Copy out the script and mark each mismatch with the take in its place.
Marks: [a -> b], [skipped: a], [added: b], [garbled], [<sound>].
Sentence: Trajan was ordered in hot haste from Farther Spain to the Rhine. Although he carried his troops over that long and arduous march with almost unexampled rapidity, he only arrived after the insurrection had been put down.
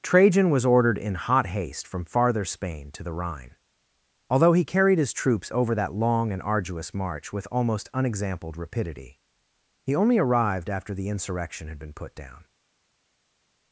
Trajan was ordered in hot haste from Farther Spain to the Rhine. Although he carried his troops over that long and arduous march with almost unexampled rapidity, he only arrived after the insurrection had been put down.